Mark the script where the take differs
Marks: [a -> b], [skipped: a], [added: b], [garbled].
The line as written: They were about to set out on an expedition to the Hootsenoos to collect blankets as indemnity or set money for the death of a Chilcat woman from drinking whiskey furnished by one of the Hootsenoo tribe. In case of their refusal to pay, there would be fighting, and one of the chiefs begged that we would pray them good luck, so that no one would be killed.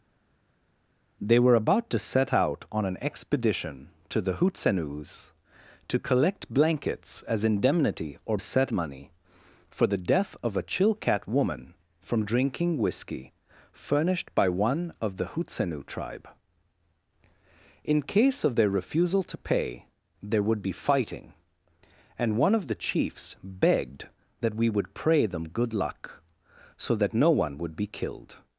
They were about to set out on an expedition to the Hootsenoos to collect blankets as indemnity or set money for the death of a Chilcat woman from drinking whiskey furnished by one of the Hootsenoo tribe. In case of their refusal to pay, there would be fighting, and one of the chiefs begged that we would pray them good luck, so that no one would be killed.